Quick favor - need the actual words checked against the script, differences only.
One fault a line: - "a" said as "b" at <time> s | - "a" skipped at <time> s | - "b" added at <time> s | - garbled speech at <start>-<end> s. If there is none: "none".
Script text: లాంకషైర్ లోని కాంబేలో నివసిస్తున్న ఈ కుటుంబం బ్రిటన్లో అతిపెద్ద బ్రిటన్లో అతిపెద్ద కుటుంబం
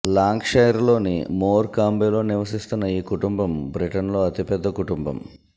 - "మోర్" added at 1.3 s
- "బ్రిటన్లో అతిపెద్ద" skipped at 4.7 s